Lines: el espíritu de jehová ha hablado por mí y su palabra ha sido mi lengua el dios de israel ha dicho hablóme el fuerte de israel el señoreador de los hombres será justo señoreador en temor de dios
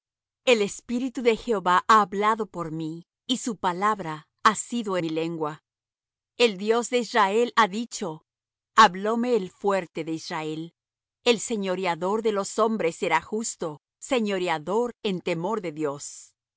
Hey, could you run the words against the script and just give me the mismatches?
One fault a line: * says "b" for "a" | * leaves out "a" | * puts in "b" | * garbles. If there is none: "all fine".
all fine